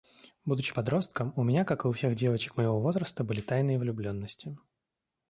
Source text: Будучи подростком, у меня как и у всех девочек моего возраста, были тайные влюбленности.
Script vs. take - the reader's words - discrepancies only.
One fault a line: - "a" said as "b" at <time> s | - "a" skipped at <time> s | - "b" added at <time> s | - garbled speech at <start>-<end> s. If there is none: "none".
none